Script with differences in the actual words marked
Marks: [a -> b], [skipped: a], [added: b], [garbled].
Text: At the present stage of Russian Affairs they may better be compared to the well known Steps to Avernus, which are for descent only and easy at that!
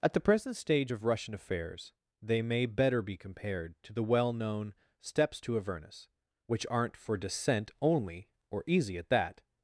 At the present stage of Russian Affairs they may better be compared to the well known Steps to Avernus, which [are -> aren't] for descent only [and -> or] easy at that!